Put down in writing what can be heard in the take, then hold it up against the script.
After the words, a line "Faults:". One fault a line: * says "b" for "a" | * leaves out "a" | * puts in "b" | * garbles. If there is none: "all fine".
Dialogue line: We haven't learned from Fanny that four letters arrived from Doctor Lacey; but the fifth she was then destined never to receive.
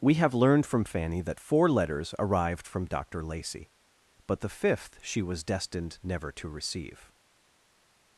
We have learned from Fanny that four letters arrived from Doctor Lacey; but the fifth she was destined never to receive.
Faults:
* says "have" for "haven't"
* leaves out "then"